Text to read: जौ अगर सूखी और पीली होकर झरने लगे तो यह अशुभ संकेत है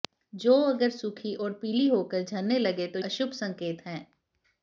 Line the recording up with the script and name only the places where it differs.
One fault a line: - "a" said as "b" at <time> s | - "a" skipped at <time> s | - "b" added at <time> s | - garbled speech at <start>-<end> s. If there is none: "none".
- "यह" skipped at 3.0 s